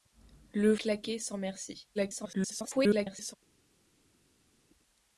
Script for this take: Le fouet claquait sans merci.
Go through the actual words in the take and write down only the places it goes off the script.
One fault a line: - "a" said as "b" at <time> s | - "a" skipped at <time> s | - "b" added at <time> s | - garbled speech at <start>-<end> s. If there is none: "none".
- "fouet" skipped at 0.8 s
- garbled speech at 1.9-3.4 s